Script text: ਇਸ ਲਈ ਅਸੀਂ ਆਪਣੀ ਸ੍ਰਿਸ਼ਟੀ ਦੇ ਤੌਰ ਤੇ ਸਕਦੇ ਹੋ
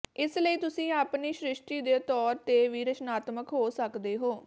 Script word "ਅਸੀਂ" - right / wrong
wrong